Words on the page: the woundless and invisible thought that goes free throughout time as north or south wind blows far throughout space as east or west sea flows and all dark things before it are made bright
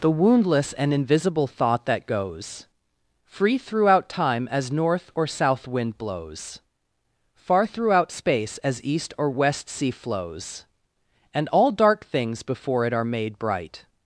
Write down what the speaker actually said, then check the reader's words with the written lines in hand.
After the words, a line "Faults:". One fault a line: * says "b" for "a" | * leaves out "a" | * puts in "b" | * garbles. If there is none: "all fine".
the woundless and invisible thought that goes free throughout time as north or south wind blows far throughout space as east or west sea flows and all dark things before it are made bright
Faults:
all fine